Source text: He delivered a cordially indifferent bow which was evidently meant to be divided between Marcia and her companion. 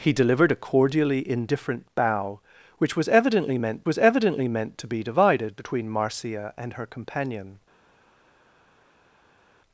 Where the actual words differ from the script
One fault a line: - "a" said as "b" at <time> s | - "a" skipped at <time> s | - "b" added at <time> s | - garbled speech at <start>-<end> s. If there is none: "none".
- "was evidently meant" added at 3.8 s